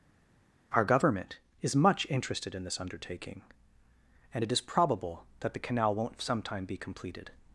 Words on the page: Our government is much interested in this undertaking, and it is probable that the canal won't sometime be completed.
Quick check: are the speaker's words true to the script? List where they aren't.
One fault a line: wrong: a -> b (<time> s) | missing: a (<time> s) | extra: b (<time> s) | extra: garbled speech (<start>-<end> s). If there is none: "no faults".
no faults